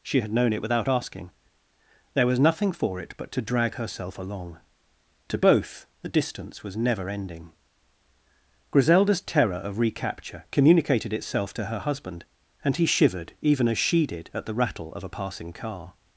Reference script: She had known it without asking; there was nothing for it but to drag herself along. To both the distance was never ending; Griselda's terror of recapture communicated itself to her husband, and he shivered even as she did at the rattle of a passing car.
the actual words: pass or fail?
pass